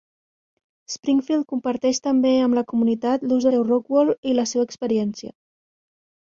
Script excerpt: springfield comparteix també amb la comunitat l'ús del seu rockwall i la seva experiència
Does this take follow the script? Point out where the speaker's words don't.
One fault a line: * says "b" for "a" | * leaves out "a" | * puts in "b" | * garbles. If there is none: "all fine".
* leaves out "del"